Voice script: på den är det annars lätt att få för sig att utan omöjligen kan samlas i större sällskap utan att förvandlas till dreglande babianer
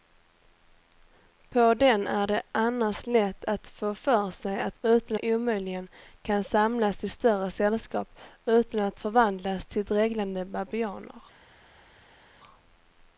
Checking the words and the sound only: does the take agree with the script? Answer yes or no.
yes